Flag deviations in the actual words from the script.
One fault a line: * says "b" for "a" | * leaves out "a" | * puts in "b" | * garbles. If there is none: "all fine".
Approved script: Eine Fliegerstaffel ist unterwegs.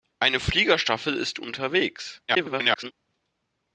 * garbles